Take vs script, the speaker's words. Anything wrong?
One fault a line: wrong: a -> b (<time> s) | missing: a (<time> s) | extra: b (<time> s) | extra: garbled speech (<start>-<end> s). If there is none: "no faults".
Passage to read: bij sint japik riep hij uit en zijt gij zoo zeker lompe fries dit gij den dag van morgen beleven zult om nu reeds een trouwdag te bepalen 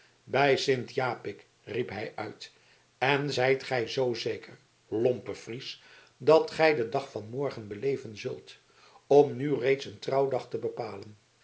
wrong: dit -> dat (6.2 s)